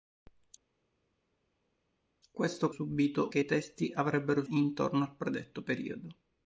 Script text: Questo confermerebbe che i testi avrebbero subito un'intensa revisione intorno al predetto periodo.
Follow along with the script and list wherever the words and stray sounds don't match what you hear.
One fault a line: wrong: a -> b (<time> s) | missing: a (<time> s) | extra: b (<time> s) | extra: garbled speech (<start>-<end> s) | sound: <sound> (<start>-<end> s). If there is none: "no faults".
wrong: confermerebbe -> subito (2.7 s)
missing: subito un'intensa revisione (4.4 s)